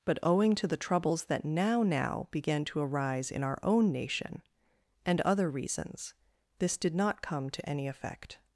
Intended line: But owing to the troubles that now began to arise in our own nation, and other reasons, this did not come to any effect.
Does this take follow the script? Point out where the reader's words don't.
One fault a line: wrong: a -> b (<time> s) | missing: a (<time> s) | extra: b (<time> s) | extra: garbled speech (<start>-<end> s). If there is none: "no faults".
extra: now (1.8 s)